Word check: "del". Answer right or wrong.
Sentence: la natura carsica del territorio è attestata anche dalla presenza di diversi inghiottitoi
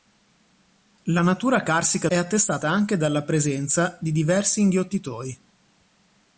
wrong